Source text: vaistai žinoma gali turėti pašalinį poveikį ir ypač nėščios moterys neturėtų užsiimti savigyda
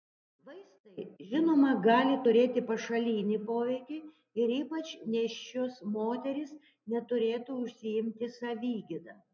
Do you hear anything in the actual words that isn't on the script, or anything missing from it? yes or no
no